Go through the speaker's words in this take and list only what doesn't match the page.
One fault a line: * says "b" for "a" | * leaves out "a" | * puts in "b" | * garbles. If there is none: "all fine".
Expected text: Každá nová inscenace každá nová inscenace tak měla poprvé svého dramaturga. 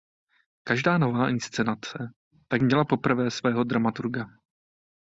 * leaves out "každá nová inscenace"